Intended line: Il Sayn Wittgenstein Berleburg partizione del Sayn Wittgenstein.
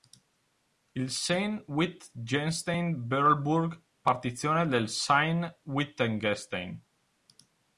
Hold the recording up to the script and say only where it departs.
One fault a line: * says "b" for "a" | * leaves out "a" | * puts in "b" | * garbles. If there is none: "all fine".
all fine